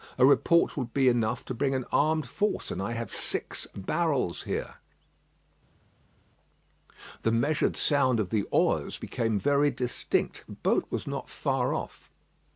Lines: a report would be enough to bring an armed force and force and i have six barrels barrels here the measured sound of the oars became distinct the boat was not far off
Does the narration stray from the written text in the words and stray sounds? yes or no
yes